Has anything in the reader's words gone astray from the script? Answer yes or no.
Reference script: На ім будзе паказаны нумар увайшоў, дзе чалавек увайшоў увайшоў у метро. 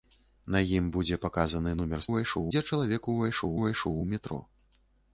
no